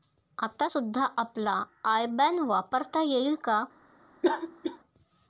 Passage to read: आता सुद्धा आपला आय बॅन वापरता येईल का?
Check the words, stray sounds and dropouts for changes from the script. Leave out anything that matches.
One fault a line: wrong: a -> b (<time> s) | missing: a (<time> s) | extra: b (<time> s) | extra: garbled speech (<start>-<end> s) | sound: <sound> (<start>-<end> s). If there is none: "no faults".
sound: cough (4.2-4.8 s)